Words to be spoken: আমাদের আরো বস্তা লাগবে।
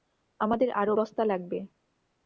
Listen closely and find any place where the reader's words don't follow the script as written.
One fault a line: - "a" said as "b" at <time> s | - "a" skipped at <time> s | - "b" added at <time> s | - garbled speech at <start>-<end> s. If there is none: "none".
none